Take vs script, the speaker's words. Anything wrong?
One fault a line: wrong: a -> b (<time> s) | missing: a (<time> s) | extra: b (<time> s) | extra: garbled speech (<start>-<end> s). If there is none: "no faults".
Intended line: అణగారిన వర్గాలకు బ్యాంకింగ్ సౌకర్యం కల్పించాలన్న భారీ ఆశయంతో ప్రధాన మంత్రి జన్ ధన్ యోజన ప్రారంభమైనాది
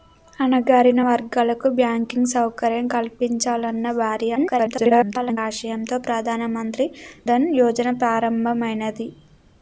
extra: garbled speech (4.4-5.4 s)
missing: జన్ (6.9 s)